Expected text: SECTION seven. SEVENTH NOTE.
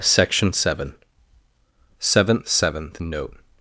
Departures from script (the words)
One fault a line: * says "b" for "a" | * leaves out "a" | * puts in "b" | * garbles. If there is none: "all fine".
* puts in "SEVENTH"